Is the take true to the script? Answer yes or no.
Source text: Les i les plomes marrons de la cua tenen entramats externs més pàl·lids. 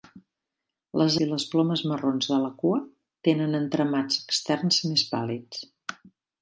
yes